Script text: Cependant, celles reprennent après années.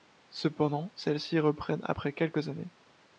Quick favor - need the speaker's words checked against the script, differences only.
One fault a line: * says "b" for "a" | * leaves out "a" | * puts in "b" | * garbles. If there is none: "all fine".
* puts in "ci"
* puts in "quelques"